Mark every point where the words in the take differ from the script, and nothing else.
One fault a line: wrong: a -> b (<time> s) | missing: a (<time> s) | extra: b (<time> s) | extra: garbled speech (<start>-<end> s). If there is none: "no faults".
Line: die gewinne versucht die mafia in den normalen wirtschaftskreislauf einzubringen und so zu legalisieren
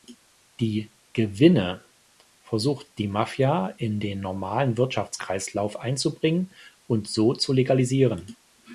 no faults